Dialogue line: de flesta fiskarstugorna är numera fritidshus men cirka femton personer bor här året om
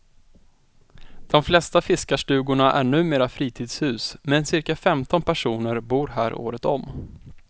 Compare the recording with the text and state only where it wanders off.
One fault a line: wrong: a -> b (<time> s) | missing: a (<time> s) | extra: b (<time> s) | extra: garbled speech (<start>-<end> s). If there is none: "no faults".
no faults